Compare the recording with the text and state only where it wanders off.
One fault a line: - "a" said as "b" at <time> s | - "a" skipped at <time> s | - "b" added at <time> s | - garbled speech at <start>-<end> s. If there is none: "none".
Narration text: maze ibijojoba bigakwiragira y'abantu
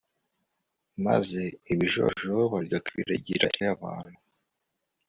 none